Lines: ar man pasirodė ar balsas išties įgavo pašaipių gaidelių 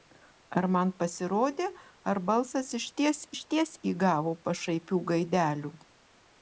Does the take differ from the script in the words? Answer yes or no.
yes